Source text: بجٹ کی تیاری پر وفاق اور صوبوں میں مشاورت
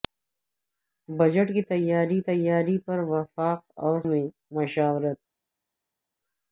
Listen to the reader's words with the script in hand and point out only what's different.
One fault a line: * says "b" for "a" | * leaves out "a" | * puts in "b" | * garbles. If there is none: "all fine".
* puts in "تیاری"
* leaves out "صوبوں"